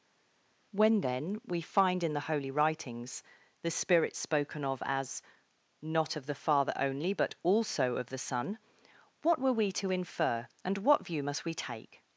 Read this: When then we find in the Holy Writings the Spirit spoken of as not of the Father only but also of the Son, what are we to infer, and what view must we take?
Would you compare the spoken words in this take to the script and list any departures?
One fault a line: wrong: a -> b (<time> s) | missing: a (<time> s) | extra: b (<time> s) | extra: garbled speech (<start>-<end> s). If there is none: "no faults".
wrong: are -> were (9.4 s)